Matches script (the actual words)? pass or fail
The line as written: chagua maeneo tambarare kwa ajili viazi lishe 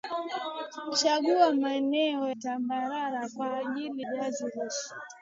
pass